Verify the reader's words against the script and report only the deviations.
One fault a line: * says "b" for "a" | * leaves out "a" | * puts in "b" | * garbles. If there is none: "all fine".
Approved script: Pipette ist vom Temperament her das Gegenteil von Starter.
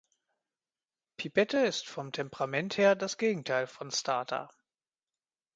all fine